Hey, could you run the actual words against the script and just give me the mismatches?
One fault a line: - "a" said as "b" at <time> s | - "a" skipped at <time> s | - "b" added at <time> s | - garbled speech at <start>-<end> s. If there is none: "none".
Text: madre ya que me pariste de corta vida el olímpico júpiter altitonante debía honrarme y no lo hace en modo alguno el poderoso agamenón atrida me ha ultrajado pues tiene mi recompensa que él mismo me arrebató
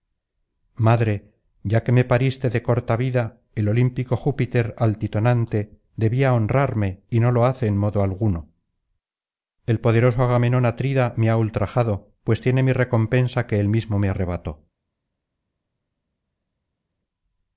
none